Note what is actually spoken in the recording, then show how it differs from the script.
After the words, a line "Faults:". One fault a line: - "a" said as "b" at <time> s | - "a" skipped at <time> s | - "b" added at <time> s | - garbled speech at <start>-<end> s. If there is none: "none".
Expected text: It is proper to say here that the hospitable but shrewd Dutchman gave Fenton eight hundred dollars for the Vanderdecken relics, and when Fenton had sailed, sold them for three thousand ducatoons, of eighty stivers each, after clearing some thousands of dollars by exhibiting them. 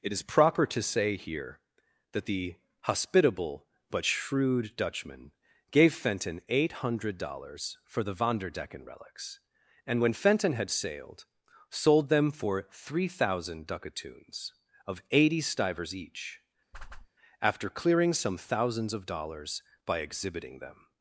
It is proper to say here that the hospitable but shrewd Dutchman gave Fenton eight hundred dollars for the Vanderdecken relics, and when Fenton had sailed, sold them for three thousand ducatoons, of eighty stivers each, after clearing some thousands of dollars by exhibiting them.
Faults:
none